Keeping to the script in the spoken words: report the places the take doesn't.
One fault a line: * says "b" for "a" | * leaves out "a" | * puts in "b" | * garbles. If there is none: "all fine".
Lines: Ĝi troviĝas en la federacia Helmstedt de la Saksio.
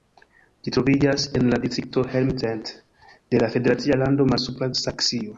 * says "distrikto" for "federacia"
* puts in "federacia lando Malsupra"